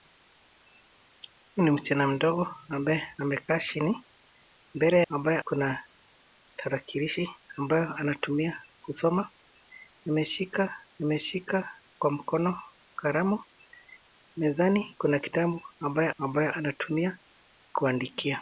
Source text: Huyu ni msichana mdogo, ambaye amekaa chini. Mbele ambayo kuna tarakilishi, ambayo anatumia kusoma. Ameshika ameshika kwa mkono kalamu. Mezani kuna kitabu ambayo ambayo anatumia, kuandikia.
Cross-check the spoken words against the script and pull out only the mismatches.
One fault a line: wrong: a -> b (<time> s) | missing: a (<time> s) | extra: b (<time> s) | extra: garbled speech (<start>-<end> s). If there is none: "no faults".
no faults